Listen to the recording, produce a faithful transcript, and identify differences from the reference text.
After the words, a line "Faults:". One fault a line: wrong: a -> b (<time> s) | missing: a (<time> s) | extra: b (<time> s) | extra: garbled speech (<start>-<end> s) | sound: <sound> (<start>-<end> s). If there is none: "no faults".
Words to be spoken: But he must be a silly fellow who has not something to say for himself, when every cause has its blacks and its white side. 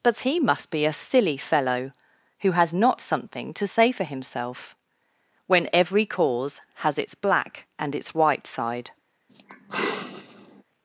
But he must be a silly fellow who has not something to say for himself, when every cause has its black and its white side.
Faults:
wrong: blacks -> black (7.1 s)
sound: sigh (9.3-10.6 s)